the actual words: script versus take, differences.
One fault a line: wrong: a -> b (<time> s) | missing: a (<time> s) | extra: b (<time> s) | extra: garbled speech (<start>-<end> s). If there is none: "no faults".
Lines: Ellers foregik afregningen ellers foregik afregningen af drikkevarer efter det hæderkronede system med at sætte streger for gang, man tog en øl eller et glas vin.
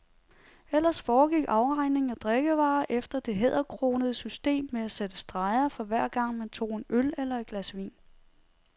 missing: ellers foregik afregningen (2.1 s)
extra: hver (5.8 s)